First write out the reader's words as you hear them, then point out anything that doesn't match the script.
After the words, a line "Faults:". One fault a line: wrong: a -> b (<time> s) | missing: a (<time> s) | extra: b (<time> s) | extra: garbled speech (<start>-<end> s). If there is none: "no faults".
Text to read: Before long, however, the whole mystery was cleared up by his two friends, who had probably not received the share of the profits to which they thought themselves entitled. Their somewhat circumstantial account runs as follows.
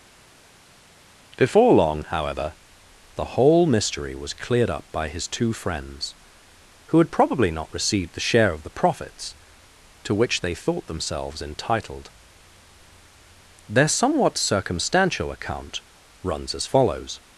Before long, however, the whole mystery was cleared up by his two friends, who had probably not received the share of the profits to which they thought themselves entitled. Their somewhat circumstantial account runs as follows.
Faults:
no faults